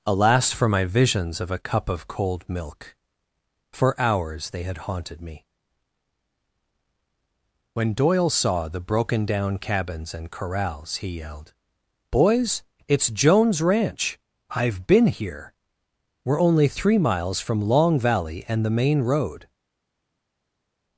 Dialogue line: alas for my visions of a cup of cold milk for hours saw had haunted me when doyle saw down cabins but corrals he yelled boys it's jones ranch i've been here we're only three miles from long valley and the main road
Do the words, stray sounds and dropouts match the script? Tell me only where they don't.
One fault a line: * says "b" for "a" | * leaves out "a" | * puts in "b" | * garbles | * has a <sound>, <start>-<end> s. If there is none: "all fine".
* says "they" for "saw"
* puts in "the broken"
* says "and" for "but"